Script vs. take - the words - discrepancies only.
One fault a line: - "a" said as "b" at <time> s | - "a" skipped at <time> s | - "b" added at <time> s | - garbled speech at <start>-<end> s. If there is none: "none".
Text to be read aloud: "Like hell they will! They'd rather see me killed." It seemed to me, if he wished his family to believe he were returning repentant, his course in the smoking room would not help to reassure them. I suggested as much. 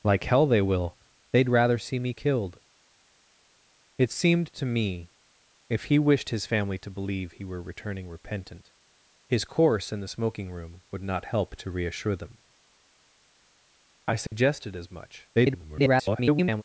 - garbled speech at 15.3-16.6 s